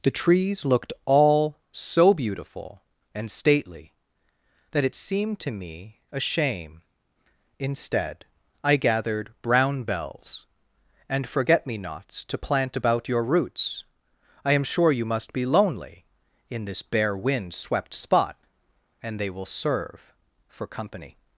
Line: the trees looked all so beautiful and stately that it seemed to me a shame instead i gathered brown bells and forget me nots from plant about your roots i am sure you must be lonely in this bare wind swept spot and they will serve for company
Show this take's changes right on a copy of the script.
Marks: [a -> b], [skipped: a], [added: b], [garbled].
the trees looked all so beautiful and stately that it seemed to me a shame instead i gathered brown bells and forget me nots [from -> to] plant about your roots i am sure you must be lonely in this bare wind swept spot and they will serve for company